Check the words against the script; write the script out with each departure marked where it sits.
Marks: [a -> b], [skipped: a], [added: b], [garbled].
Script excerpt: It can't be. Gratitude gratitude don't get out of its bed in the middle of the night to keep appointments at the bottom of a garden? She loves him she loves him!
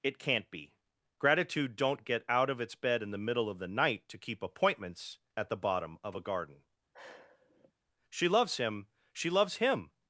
It can't be. Gratitude [skipped: gratitude] don't get out of its bed in the middle of the night to keep appointments at the bottom of a garden? She loves him she loves him!